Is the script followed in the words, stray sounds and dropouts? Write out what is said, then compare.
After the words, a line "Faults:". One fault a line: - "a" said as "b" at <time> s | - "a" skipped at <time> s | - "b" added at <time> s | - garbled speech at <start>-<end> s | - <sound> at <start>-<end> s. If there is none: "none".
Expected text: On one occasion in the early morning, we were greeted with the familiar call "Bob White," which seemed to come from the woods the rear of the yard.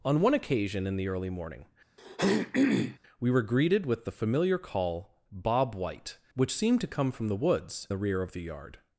On one occasion in the early morning, we were greeted with the familiar call "Bob White," which seemed to come from the woods the rear of the yard.
Faults:
- throat clearing at 2.0-3.0 s